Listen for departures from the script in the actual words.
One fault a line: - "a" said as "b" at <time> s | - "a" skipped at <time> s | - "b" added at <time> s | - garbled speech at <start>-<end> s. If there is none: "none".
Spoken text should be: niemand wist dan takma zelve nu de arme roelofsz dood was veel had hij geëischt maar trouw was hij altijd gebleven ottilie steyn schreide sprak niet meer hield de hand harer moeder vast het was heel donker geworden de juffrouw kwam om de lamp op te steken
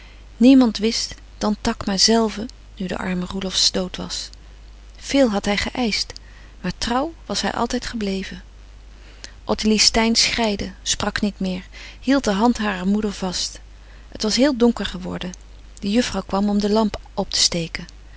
none